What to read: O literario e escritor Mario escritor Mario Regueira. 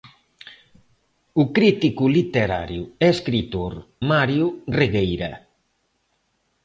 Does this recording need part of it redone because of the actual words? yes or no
yes